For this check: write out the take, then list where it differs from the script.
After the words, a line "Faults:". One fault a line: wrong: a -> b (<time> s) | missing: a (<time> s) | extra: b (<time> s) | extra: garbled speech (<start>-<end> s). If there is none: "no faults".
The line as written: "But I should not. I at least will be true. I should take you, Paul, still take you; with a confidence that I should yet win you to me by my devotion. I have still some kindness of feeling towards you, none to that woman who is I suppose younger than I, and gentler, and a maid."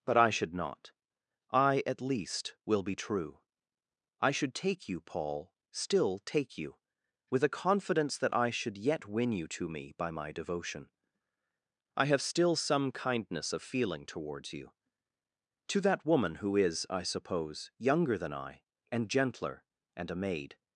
"But I should not. I at least will be true. I should take you, Paul, still take you; with a confidence that I should yet win you to me by my devotion. I have still some kindness of feeling towards you, to that woman who is I suppose younger than I, and gentler, and a maid."
Faults:
missing: none (14.7 s)